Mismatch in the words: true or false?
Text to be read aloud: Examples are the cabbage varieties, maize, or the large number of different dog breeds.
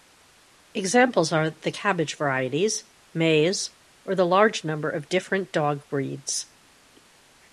false